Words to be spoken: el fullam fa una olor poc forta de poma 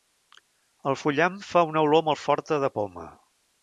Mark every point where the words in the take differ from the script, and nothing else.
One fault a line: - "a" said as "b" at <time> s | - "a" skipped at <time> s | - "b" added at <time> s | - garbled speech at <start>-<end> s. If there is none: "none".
- "poc" said as "molt" at 2.1 s